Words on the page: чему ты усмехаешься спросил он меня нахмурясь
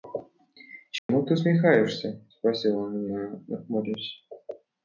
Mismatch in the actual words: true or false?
false